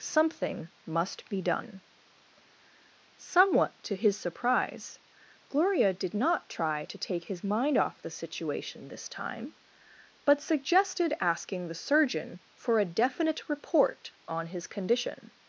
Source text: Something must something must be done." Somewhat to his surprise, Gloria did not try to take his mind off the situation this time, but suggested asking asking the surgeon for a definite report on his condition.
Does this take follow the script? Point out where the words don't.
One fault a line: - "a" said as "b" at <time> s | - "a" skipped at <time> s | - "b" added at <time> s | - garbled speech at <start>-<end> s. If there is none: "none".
- "something must" skipped at 1.3 s
- "asking" skipped at 11.7 s